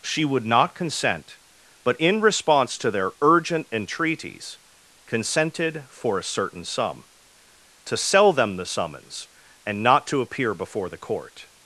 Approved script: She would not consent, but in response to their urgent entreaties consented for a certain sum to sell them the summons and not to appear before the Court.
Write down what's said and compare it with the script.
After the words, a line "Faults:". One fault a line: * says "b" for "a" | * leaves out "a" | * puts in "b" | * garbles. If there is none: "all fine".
She would not consent, but in response to their urgent entreaties consented for a certain sum to sell them the summons and not to appear before the Court.
Faults:
all fine